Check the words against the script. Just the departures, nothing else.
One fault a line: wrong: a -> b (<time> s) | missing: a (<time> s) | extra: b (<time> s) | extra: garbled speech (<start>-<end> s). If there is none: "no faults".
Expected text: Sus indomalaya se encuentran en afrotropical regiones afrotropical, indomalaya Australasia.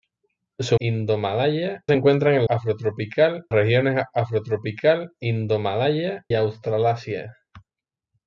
no faults